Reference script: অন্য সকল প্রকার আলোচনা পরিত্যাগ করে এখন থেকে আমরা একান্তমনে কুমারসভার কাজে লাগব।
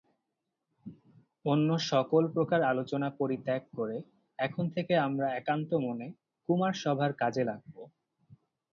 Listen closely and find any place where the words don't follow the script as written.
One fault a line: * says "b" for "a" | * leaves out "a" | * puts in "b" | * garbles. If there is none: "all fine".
all fine